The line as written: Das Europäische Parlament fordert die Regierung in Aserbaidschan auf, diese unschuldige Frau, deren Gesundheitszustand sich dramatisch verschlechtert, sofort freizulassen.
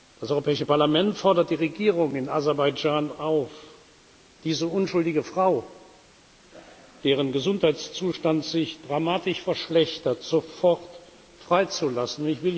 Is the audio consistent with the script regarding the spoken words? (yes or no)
yes